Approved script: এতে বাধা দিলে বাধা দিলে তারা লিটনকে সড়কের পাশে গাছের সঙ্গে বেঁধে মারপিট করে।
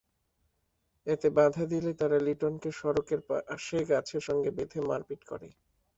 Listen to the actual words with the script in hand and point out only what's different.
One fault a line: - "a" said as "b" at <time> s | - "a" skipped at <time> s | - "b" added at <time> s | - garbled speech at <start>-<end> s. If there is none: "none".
- "বাধা দিলে" skipped at 1.9 s